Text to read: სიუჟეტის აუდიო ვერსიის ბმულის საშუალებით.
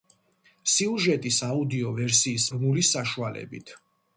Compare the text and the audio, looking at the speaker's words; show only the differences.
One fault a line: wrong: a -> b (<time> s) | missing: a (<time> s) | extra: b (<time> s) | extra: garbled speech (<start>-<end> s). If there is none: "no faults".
no faults